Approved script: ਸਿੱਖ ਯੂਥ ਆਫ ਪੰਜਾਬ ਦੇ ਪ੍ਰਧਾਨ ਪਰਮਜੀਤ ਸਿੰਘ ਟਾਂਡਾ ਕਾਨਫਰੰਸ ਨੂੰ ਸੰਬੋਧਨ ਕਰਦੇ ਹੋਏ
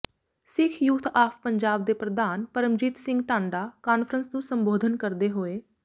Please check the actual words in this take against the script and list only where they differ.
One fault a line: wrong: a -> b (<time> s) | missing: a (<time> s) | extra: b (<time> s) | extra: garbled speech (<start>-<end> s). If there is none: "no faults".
no faults